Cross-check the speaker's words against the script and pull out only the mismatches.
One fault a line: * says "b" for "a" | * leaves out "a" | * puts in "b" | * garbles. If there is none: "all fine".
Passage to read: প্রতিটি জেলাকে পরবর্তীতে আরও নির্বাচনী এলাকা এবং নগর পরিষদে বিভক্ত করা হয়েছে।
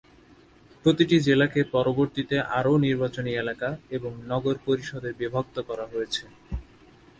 all fine